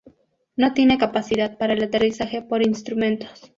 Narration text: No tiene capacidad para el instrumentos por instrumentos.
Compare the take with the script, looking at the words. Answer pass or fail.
fail